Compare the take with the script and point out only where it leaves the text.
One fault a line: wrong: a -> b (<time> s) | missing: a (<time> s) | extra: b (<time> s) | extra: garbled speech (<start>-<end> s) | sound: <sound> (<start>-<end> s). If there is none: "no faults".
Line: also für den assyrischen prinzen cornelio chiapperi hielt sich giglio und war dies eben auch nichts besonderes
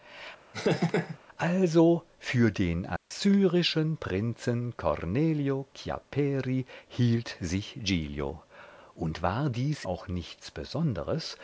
sound: laugh (0.5-1.2 s)
sound: dropout (3.0-3.1 s)
missing: eben (9.8 s)